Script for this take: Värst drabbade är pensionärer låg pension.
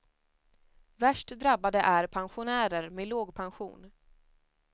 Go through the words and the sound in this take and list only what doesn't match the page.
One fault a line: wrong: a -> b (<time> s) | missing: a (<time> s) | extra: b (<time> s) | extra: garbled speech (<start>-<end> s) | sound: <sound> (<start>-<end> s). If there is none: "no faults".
extra: med (2.9 s)